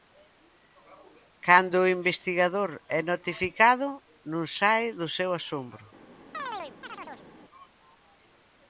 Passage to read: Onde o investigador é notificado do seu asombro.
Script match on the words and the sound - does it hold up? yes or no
no